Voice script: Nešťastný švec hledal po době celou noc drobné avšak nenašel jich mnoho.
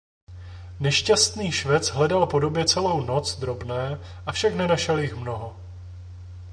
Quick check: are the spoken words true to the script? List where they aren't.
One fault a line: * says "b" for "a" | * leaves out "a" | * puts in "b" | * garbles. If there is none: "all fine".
all fine